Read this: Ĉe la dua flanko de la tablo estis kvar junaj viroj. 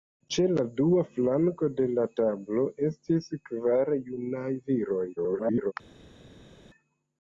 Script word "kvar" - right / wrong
right